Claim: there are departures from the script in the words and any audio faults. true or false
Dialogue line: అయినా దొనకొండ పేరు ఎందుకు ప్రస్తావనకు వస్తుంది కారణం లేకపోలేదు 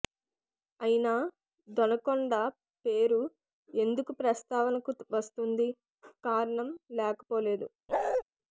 true